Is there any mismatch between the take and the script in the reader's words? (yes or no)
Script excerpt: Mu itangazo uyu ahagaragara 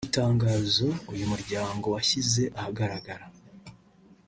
yes